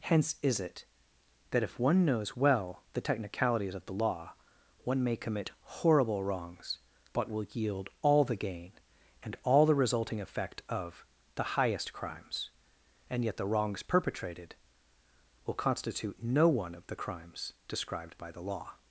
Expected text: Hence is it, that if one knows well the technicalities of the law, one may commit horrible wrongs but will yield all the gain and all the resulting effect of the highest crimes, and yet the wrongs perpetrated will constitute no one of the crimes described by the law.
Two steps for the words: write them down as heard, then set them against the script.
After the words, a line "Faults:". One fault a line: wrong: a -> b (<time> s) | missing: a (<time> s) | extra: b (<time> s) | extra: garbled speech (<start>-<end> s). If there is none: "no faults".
Hence is it, that if one knows well the technicalities of the law, one may commit horrible wrongs but will yield all the gain and all the resulting effect of the highest crimes, and yet the wrongs perpetrated will constitute no one of the crimes described by the law.
Faults:
no faults